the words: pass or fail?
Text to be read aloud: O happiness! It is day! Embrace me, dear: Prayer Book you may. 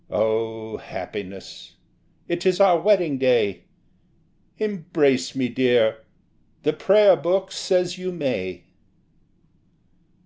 fail